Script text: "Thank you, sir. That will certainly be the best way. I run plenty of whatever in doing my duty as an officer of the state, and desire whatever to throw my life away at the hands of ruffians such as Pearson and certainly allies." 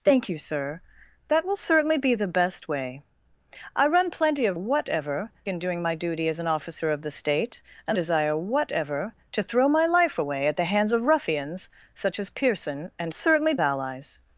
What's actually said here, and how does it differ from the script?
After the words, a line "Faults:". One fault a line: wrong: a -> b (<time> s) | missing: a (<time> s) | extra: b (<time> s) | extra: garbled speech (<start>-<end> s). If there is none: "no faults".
"Thank you, sir. That will certainly be the best way. I run plenty of whatever in doing my duty as an officer of the state, and desire whatever to throw my life away at the hands of ruffians such as Pearson and certainly allies."
Faults:
no faults